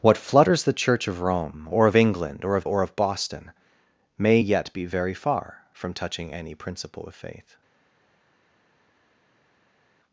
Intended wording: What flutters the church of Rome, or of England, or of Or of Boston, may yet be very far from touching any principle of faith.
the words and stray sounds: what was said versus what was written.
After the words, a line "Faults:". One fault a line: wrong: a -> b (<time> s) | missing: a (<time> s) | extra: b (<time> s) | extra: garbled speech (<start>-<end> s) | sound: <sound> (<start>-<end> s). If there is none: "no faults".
What flutters the church of Rome, or of England, or of Or of Boston, may yet be very far from touching any principle of faith.
Faults:
no faults